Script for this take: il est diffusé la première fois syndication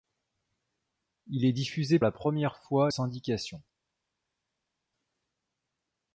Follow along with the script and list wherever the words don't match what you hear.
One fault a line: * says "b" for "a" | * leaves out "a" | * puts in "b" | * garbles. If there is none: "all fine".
all fine